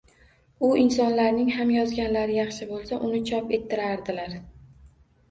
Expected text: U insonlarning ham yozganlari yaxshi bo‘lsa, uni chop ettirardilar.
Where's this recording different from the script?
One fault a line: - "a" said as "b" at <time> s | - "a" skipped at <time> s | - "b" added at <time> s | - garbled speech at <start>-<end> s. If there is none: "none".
none